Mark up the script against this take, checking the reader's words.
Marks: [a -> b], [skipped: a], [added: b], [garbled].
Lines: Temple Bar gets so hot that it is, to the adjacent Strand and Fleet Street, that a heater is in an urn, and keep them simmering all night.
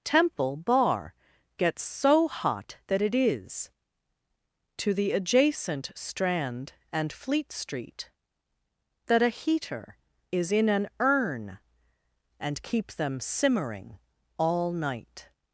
Temple Bar gets so hot that it is, to the adjacent Strand and Fleet Street, that a heater is in an urn, and keep them simmering all night.